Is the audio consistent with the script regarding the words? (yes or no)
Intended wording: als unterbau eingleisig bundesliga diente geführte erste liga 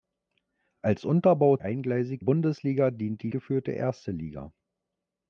yes